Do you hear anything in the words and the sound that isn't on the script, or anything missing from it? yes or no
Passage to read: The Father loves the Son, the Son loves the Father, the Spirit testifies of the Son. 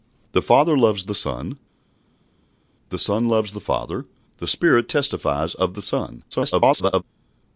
yes